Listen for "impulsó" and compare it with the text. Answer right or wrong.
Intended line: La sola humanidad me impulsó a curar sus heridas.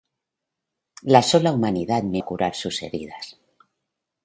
wrong